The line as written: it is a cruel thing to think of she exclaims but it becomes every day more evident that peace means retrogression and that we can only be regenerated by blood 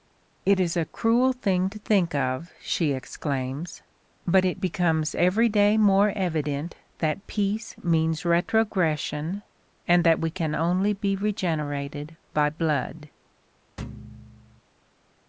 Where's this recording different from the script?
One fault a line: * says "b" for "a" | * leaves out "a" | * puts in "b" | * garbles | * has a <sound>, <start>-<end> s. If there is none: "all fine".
* has a thud, 13.8-14.6 s